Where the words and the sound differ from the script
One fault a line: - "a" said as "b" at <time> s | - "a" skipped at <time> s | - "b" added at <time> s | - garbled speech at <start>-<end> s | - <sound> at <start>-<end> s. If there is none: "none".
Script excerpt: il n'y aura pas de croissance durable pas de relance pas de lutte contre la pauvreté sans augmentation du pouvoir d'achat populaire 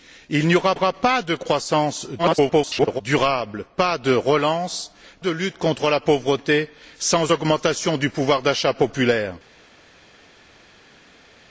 - "aura" added at 0.7 s
- garbled speech at 2.2-3.0 s
- "pas" skipped at 4.9 s